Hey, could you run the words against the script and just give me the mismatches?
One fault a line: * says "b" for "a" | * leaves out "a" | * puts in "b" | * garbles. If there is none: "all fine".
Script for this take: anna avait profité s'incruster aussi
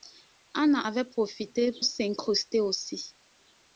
all fine